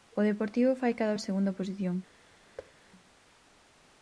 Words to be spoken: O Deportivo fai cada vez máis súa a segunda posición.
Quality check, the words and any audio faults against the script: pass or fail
fail